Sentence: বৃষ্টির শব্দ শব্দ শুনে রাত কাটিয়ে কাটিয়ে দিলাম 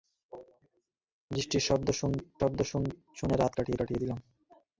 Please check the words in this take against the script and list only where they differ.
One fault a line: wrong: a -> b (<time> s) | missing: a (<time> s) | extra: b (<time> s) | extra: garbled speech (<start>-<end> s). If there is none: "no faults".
no faults